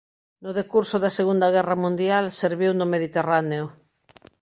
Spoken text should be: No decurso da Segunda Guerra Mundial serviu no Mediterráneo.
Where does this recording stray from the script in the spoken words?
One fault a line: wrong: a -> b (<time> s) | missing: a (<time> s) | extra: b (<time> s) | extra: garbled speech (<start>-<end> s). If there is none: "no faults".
no faults